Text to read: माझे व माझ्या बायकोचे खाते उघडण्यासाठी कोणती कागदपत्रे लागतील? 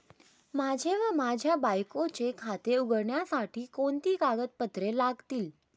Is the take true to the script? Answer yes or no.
yes